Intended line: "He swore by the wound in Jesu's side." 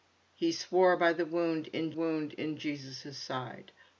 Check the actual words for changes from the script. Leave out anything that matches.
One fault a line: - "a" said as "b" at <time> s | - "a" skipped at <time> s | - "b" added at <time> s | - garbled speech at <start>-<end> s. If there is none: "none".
- "wound in" added at 1.9 s